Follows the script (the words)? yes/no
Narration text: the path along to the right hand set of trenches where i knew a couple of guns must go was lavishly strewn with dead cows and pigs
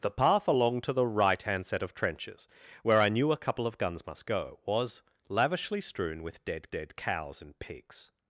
no